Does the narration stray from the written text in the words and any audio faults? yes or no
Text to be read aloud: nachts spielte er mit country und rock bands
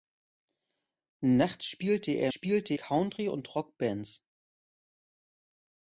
yes